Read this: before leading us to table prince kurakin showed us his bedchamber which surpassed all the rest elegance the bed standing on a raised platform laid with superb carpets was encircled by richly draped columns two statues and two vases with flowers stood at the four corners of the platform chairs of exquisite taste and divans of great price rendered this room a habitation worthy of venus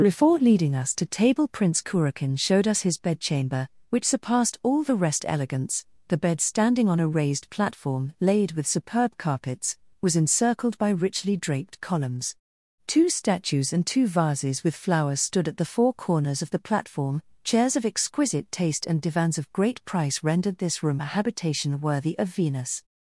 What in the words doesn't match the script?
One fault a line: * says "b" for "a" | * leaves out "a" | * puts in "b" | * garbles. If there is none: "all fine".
all fine